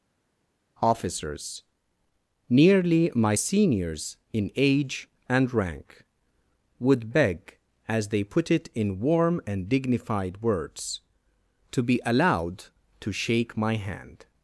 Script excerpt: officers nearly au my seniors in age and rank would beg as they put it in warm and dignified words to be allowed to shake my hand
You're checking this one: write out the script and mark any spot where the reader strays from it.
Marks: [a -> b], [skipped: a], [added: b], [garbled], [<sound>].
officers nearly [skipped: au] my seniors in age and rank would beg as they put it in warm and dignified words to be allowed to shake my hand